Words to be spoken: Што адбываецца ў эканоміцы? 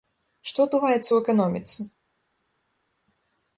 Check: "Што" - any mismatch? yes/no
no